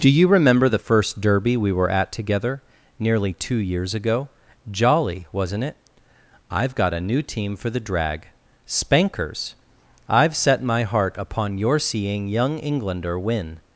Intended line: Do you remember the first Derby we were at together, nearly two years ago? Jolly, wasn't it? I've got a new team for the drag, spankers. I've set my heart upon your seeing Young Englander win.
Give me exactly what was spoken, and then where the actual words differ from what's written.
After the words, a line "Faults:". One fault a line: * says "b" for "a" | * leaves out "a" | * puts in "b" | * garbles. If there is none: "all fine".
Do you remember the first Derby we were at together, nearly two years ago? Jolly, wasn't it? I've got a new team for the drag, spankers. I've set my heart upon your seeing Young Englander win.
Faults:
all fine